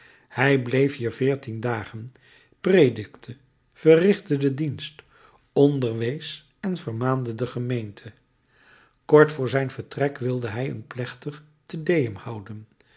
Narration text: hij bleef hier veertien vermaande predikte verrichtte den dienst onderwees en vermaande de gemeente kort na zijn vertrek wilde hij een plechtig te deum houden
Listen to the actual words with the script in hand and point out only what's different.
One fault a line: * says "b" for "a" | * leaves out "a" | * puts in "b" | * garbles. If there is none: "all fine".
* says "dagen" for "vermaande"
* says "voor" for "na"